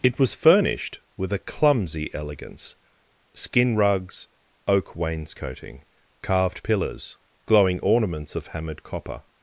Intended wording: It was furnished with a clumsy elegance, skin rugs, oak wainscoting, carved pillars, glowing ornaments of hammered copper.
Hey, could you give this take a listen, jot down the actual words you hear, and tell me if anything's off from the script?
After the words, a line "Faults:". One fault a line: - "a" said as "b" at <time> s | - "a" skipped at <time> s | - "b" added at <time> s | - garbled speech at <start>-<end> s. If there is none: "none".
It was furnished with a clumsy elegance, skin rugs, oak wainscoting, carved pillars, glowing ornaments of hammered copper.
Faults:
none